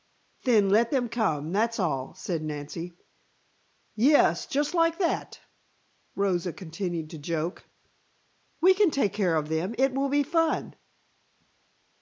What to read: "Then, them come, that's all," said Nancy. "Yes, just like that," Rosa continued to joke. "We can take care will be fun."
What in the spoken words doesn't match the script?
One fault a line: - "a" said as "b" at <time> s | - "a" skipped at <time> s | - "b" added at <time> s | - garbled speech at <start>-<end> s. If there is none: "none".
- "let" added at 0.7 s
- "of them It" added at 9.3 s